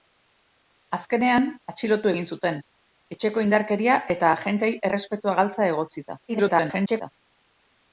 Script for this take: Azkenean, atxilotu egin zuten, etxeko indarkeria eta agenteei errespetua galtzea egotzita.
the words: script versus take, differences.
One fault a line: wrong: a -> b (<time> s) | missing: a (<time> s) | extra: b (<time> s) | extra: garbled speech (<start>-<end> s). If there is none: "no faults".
extra: garbled speech (6.3-7.1 s)